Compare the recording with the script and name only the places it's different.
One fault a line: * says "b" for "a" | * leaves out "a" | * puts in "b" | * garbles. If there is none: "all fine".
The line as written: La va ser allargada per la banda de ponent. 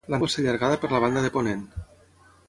all fine